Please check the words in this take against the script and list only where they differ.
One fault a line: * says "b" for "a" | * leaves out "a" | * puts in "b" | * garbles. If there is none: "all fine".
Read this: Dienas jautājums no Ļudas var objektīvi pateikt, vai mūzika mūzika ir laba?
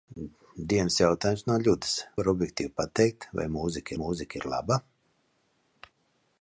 all fine